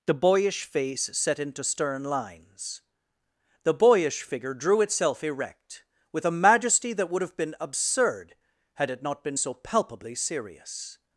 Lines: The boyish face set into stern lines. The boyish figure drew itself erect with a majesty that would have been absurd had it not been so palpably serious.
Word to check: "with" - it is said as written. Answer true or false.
true